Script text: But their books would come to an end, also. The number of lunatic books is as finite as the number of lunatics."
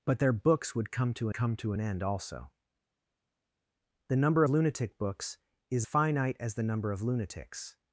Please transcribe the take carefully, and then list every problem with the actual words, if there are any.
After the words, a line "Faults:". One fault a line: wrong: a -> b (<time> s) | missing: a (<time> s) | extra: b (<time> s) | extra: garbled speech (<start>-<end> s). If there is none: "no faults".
But their books would come to come to an end, also. The number lunatic books is finite as the number of lunatics."
Faults:
extra: come to (1.3 s)
missing: of (4.4 s)
missing: as (5.9 s)